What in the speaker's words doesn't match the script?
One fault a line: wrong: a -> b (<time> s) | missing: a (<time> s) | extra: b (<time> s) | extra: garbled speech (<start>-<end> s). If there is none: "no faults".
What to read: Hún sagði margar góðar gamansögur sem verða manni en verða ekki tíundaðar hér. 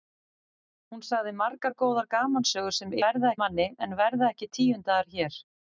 no faults